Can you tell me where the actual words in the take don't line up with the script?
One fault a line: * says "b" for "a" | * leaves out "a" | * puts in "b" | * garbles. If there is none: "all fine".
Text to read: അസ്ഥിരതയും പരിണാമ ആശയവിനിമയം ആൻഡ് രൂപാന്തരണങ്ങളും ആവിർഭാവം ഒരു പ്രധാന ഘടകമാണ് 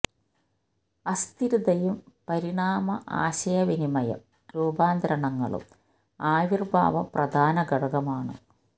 * leaves out "ആൻഡ്"
* leaves out "ഒരു"